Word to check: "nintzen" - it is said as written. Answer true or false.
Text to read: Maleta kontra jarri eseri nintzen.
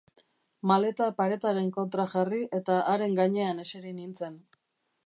true